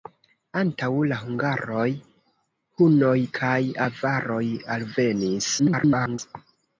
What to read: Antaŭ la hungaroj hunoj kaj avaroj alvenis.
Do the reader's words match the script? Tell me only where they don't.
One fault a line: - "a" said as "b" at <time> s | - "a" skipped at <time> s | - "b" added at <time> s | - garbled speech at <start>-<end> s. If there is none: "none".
- garbled speech at 5.6-6.2 s